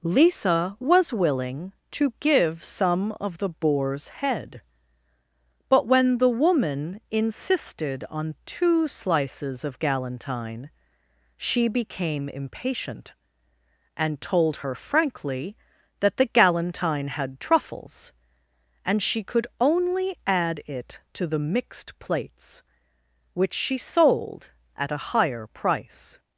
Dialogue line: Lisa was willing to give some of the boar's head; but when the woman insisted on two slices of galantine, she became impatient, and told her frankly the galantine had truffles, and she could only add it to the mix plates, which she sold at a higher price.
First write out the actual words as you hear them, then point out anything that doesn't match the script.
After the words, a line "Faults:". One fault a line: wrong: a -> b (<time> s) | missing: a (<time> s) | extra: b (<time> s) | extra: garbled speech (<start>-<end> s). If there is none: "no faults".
Lisa was willing to give some of the boar's head; but when the woman insisted on two slices of galantine, she became impatient, and told her frankly that the galantine had truffles, and she could only add it to the mixed plates, which she sold at a higher price.
Faults:
extra: that (16.0 s)
wrong: mix -> mixed (21.4 s)